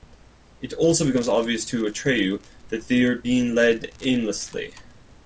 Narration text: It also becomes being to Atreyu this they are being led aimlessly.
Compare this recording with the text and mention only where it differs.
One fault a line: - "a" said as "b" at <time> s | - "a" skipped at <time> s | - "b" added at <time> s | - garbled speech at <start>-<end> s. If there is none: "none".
- "being" said as "obvious" at 1.3 s
- "this" said as "that" at 2.7 s